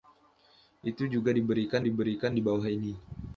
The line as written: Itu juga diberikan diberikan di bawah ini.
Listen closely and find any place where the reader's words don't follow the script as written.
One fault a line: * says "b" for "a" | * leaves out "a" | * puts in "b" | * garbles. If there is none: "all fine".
all fine